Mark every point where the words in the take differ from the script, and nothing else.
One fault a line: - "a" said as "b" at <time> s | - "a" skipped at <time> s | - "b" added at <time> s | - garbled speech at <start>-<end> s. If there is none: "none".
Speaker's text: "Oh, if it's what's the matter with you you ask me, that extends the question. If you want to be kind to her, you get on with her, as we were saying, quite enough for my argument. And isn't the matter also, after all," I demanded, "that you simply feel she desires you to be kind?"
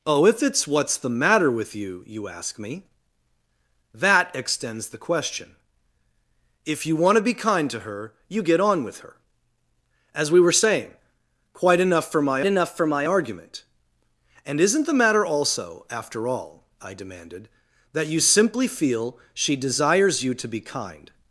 - "enough for my" added at 12.4 s